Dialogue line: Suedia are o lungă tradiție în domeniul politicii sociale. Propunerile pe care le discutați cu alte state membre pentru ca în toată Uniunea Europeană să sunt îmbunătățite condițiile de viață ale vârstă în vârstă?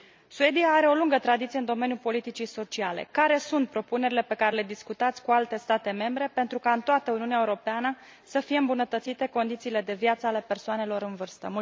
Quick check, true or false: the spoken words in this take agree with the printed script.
false